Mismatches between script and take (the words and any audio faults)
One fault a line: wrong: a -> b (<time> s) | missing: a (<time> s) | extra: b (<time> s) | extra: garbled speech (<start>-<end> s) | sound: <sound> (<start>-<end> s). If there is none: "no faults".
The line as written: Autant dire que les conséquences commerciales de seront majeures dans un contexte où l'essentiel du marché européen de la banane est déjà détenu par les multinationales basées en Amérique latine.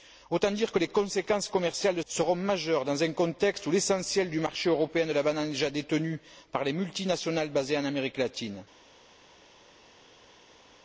no faults